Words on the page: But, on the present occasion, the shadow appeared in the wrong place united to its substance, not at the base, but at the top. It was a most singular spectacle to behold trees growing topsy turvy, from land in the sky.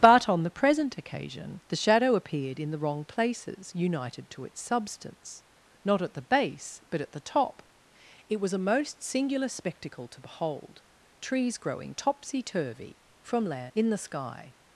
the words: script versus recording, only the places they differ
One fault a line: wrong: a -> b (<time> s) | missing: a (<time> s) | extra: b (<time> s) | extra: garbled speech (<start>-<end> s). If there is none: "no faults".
wrong: place -> places (3.0 s)